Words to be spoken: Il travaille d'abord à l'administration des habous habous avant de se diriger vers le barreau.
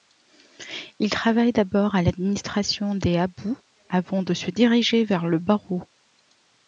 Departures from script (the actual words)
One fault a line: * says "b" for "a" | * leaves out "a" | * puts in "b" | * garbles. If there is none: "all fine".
* leaves out "habous"